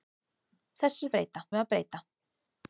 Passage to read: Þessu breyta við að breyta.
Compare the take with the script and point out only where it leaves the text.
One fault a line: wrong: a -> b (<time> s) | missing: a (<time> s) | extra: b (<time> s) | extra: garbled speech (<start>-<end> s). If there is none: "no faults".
no faults